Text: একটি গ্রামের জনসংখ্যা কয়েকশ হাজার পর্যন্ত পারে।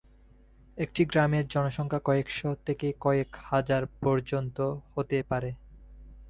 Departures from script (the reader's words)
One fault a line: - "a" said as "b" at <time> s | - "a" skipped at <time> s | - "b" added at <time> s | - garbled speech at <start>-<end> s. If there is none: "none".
- "থেকে কয়েক" added at 2.6 s
- "হতে" added at 4.9 s